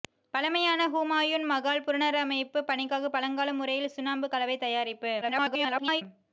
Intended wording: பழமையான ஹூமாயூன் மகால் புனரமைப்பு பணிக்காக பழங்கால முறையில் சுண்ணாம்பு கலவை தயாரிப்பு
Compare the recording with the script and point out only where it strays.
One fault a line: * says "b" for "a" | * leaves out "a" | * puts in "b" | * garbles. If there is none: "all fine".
* garbles